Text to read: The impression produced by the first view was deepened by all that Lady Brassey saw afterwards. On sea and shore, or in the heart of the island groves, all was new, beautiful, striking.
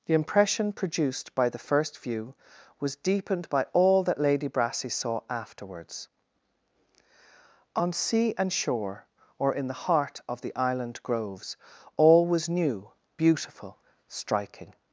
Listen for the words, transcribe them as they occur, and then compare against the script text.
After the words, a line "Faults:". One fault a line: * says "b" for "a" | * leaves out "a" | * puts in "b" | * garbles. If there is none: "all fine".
The impression produced by the first view was deepened by all that Lady Brassey saw afterwards. On sea and shore, or in the heart of the island groves, all was new, beautiful, striking.
Faults:
all fine